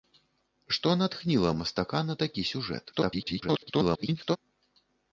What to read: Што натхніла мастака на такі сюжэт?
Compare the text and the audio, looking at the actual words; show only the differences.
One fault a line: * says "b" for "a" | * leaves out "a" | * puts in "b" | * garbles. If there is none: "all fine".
* garbles